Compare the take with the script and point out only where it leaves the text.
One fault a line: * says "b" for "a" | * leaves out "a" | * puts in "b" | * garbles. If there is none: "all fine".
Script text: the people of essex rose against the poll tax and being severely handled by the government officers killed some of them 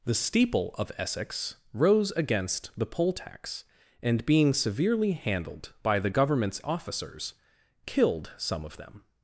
* says "steeple" for "people"
* says "governments" for "government"